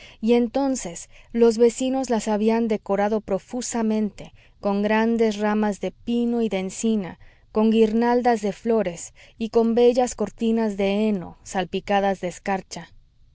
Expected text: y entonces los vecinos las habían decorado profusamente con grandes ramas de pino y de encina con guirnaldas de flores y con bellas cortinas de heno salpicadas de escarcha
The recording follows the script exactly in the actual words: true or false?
true